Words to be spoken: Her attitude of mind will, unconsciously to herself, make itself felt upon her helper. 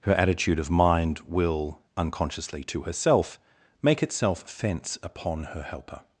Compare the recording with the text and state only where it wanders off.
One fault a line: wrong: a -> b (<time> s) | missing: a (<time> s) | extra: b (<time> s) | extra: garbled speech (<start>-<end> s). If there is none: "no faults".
wrong: felt -> fence (4.5 s)